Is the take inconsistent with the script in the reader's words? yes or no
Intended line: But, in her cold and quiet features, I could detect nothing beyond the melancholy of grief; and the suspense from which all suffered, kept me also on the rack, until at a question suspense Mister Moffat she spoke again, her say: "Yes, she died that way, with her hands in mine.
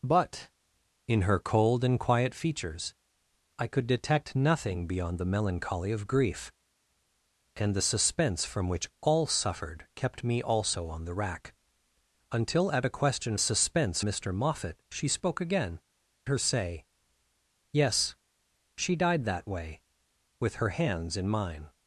no